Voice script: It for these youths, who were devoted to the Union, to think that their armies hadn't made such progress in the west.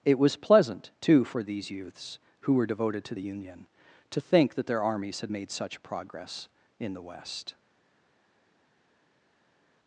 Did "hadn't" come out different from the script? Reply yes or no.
yes